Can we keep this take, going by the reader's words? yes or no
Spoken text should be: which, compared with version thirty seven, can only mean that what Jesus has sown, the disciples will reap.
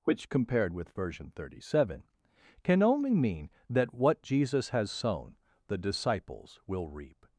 yes